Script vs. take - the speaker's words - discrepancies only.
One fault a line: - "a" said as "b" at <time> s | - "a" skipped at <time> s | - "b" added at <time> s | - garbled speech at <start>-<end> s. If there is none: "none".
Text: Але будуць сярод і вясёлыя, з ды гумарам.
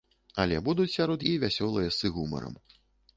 none